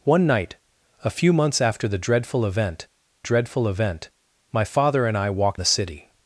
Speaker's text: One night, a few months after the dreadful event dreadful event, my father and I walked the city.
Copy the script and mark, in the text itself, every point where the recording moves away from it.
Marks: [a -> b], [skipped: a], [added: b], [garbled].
One night, a few months after the dreadful event dreadful event, my father and I walked the city.